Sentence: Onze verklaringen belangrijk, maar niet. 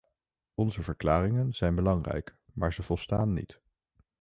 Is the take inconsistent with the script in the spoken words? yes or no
yes